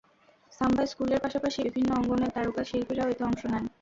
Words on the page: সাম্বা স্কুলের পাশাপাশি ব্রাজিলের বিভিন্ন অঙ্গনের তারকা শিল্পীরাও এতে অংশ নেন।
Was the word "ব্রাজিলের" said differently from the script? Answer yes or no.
yes